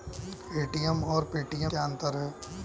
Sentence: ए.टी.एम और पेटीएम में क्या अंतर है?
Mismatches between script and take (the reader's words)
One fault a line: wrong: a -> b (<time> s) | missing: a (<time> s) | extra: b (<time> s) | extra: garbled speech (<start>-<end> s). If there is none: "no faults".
missing: में (1.7 s)